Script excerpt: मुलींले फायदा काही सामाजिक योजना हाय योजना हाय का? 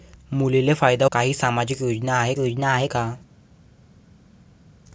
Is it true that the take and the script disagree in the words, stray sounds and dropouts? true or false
false